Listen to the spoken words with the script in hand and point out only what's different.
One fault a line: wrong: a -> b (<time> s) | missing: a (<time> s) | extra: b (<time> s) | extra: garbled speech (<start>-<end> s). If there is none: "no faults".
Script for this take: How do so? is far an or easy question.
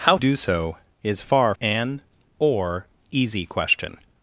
no faults